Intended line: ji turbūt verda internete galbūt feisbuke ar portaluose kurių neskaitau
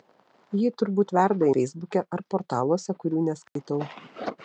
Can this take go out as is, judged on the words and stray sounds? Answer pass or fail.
fail